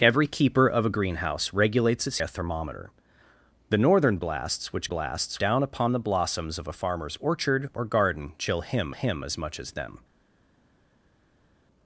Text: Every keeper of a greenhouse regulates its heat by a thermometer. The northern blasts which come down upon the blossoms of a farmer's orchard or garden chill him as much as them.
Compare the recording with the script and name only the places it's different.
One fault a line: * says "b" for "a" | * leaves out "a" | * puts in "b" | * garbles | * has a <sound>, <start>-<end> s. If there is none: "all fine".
* leaves out "heat by"
* says "blasts" for "come"
* puts in "him"